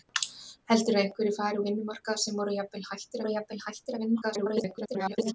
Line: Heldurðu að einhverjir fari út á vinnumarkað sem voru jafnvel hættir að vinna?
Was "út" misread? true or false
true